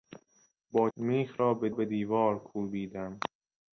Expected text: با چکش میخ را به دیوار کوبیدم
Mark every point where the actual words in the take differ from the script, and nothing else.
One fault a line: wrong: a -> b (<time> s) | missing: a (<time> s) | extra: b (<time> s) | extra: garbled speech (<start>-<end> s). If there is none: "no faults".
missing: چکش (0.9 s)
extra: به (1.7 s)